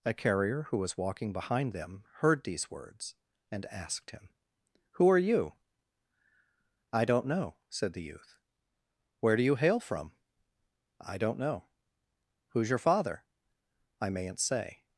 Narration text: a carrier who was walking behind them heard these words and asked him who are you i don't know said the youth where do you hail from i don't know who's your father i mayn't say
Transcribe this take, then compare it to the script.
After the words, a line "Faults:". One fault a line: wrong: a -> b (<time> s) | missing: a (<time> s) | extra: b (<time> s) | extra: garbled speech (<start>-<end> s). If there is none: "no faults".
a carrier who was walking behind them heard these words and asked him who are you i don't know said the youth where do you hail from i don't know who's your father i mayn't say
Faults:
no faults